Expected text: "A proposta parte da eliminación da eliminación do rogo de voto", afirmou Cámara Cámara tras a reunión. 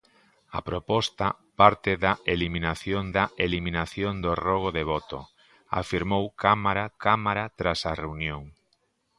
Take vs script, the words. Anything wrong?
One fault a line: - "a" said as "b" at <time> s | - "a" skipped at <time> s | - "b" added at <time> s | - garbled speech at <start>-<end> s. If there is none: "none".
none